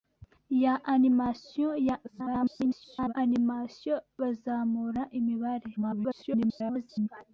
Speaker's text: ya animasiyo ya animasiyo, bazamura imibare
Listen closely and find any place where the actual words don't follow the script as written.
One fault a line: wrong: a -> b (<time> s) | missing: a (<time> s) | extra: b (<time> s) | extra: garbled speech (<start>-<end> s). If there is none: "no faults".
extra: garbled speech (2.0-3.1 s)
extra: garbled speech (5.8-7.1 s)